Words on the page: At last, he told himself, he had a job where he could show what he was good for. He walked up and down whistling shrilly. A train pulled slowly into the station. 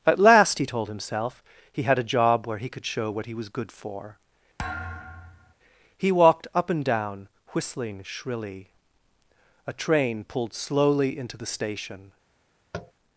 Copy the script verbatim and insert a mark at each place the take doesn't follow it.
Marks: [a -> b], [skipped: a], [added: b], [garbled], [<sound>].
At last, he told himself, he had a job where he could show what he was good for. [thud] He walked up and down whistling shrilly. A train pulled slowly into the station. [tap]